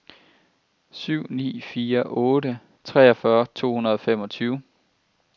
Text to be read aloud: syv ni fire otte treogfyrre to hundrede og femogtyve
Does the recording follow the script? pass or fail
pass